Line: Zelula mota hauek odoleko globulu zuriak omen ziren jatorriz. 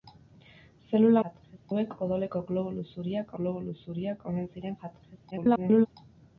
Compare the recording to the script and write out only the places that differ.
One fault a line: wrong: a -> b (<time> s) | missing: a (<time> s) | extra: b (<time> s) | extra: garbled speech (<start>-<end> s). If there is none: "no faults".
wrong: mota -> jatorriz (1.3 s)
extra: globulu zuriak (3.4 s)
extra: garbled speech (5.3-5.9 s)